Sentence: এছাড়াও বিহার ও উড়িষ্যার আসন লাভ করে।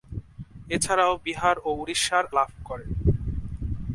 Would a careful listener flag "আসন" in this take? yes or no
yes